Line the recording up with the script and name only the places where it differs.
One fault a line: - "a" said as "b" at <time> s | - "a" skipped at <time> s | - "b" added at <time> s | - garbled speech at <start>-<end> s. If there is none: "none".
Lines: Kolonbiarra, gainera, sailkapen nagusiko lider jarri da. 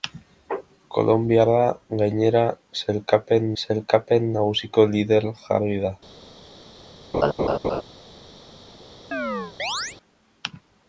- "sailkapen" added at 3.6 s